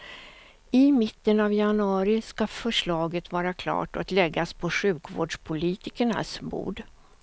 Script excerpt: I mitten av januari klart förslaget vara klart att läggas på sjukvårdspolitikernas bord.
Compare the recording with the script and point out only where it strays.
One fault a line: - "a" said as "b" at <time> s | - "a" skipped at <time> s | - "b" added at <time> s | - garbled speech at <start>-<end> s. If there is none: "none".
- "klart" said as "ska" at 2.2 s